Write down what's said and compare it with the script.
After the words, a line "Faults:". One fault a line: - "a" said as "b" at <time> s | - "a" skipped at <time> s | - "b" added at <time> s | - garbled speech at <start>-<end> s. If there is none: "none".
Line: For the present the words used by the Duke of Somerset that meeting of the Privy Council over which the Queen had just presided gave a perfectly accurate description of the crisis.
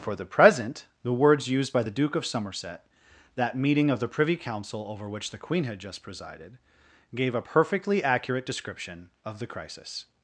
For the present the words used by the Duke of Somerset that meeting of the Privy Council over which the Queen had just presided gave a perfectly accurate description of the crisis.
Faults:
none